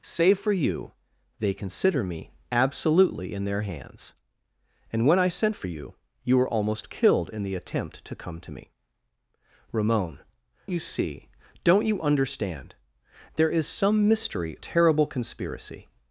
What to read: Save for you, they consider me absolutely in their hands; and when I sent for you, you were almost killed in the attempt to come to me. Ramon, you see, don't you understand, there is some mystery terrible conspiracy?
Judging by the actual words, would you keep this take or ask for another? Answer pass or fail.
pass